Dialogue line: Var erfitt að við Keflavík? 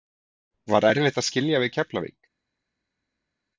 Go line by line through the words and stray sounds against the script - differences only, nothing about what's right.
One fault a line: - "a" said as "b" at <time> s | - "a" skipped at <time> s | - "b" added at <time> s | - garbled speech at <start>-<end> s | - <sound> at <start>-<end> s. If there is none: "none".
- "skilja" added at 1.3 s